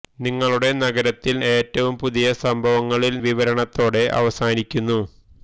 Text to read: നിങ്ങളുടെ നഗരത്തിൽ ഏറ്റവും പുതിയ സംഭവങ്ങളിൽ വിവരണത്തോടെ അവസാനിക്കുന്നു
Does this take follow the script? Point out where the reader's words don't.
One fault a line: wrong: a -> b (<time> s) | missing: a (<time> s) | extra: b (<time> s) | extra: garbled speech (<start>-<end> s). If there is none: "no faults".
no faults